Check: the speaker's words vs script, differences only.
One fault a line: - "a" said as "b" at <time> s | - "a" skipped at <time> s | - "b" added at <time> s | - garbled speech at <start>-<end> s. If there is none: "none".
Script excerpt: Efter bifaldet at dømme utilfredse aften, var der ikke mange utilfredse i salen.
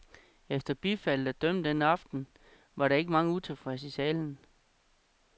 - "utilfredse" said as "den" at 1.6 s